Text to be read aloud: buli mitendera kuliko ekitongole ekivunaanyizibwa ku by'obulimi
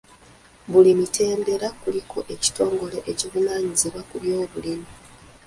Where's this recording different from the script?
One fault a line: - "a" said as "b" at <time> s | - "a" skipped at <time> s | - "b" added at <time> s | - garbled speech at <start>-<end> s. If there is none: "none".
none